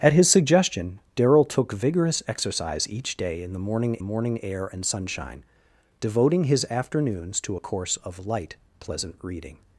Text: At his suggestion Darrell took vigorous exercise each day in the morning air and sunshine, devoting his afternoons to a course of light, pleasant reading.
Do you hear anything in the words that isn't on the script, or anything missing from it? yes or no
yes